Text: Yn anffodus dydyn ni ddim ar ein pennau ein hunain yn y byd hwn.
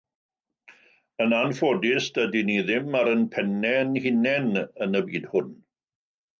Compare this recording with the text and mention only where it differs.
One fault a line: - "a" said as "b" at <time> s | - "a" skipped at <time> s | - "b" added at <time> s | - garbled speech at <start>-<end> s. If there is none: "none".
none